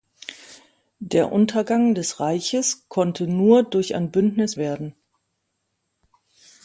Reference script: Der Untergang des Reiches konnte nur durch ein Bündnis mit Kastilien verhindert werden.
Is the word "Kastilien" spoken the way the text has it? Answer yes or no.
no